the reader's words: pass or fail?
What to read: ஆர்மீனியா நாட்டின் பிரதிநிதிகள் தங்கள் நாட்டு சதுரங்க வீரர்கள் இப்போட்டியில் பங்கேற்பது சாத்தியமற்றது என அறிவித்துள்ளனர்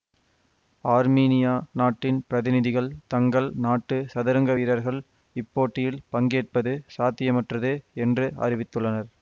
fail